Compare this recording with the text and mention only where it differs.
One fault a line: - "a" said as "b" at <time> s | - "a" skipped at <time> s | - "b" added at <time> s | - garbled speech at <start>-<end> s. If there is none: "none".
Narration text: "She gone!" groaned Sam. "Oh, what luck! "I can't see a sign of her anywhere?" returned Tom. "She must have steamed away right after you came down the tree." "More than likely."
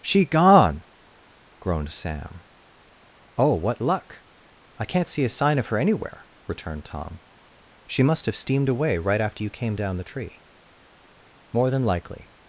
none